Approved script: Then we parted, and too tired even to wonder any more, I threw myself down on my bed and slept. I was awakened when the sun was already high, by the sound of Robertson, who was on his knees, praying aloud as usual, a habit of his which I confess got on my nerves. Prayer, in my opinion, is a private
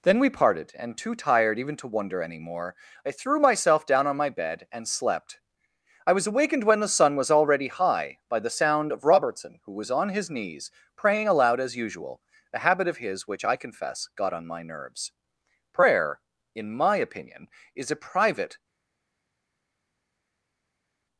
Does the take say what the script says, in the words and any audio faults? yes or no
yes